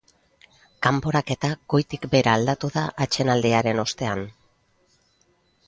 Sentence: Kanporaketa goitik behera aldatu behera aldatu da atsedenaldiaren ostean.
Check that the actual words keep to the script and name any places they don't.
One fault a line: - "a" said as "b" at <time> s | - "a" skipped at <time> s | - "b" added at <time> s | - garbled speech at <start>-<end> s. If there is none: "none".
- "behera aldatu" skipped at 2.7 s